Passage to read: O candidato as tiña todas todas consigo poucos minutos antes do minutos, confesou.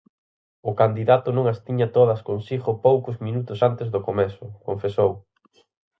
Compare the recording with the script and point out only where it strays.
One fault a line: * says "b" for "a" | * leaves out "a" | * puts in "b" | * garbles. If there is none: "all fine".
* puts in "non"
* leaves out "todas"
* says "comezo" for "minutos"